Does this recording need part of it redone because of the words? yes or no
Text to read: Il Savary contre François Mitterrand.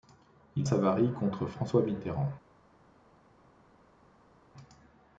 no